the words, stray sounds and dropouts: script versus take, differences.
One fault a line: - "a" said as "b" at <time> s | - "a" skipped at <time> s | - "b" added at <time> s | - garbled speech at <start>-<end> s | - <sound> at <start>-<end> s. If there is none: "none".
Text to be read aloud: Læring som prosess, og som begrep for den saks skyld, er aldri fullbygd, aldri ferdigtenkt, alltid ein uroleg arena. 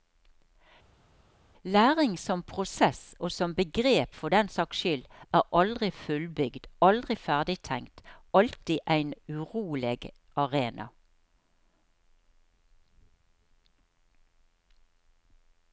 none